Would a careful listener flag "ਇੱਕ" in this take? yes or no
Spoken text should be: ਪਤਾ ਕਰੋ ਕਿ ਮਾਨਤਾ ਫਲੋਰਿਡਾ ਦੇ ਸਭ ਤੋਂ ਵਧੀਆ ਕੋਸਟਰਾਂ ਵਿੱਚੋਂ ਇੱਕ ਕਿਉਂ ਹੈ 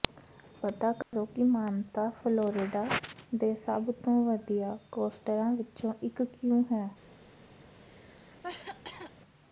no